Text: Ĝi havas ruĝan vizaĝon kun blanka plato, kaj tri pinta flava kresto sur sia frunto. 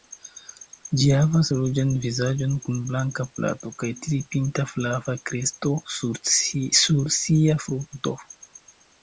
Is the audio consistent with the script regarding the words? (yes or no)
yes